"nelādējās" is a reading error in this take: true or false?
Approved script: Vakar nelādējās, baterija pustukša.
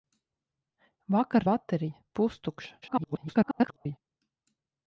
true